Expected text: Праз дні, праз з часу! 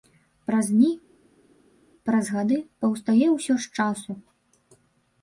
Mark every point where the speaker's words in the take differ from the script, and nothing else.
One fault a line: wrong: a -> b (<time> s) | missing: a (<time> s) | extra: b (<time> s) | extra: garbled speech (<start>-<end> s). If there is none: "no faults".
extra: гады паўстае ўсё (2.4 s)